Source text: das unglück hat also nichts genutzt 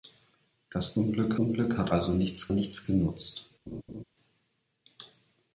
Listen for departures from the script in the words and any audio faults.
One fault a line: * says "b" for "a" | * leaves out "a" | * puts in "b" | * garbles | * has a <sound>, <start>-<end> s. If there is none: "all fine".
* puts in "unglück"
* puts in "nichts"
* has a laugh, 3.7-4.0 s